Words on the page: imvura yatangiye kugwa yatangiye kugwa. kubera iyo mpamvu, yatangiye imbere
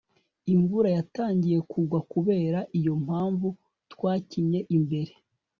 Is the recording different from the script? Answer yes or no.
yes